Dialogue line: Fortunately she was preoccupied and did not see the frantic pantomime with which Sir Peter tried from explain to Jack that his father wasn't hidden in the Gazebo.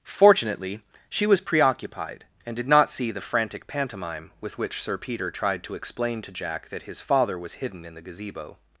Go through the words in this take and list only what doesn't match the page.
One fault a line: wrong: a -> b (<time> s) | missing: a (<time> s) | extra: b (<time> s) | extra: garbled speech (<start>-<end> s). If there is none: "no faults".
wrong: from -> to (5.6 s)
wrong: wasn't -> was (7.4 s)